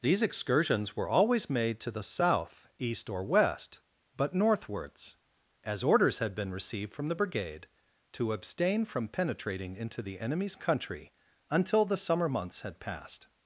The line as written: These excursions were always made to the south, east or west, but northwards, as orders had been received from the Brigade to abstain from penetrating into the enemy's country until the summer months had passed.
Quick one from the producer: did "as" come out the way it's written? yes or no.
yes